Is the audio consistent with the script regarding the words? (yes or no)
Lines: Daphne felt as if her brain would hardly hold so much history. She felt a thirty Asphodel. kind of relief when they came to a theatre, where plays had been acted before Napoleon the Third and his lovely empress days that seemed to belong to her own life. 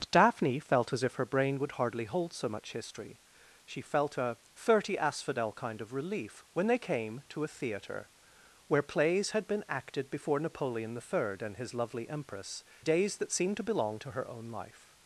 yes